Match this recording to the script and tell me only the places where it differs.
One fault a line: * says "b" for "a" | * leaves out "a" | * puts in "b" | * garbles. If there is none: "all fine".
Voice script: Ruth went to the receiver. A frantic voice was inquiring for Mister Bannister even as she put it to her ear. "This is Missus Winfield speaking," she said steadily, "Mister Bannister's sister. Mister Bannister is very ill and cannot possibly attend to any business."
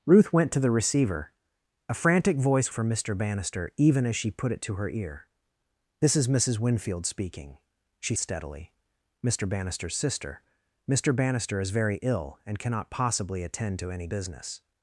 * leaves out "was inquiring"
* leaves out "said"